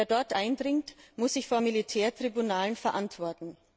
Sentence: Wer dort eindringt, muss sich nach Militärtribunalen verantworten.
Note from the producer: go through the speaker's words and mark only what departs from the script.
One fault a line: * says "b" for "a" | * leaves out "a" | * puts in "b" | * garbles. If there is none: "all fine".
* says "vor" for "nach"